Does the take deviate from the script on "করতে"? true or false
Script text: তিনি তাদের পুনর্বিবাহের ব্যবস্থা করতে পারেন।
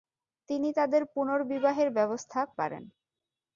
true